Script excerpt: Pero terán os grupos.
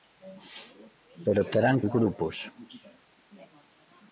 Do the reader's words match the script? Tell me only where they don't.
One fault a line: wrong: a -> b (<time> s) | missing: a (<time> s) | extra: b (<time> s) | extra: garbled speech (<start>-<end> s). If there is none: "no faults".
no faults